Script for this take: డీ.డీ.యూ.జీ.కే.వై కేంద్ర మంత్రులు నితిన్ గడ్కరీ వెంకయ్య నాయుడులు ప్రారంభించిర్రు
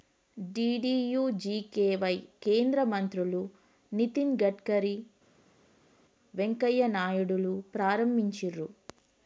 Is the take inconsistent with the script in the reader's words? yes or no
no